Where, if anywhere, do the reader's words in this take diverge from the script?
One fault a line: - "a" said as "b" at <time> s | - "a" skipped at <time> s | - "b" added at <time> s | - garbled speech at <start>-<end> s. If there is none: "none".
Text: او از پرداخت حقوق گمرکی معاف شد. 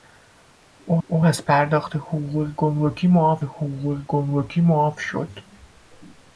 - "او" added at 1.1 s
- "حقوق گمرکی معاف" added at 3.4 s